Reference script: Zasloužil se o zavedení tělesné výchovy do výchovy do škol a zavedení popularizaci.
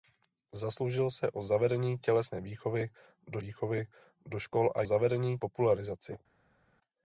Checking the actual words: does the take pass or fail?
pass